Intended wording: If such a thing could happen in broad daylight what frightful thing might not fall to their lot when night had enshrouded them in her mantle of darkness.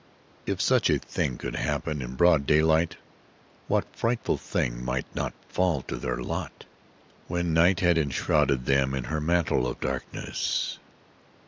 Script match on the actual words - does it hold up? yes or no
yes